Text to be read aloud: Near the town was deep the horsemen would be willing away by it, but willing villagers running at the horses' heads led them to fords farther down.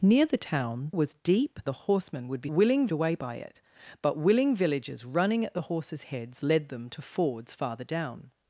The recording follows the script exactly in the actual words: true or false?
true